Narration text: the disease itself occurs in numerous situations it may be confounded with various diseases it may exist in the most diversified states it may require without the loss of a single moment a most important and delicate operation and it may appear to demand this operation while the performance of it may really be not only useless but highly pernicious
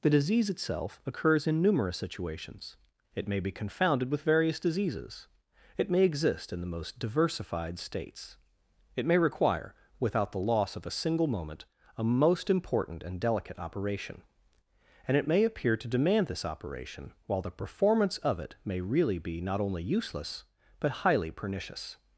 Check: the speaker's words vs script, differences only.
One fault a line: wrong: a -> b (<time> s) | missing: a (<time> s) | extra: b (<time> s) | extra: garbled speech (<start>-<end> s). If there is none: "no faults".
no faults